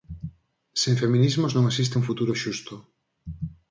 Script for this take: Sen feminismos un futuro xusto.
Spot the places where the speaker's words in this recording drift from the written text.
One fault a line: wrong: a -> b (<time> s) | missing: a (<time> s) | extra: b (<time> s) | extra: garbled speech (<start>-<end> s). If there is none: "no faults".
extra: non existe (1.6 s)